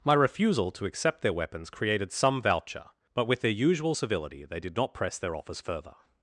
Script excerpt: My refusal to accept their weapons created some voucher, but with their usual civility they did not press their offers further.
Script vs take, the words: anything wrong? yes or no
no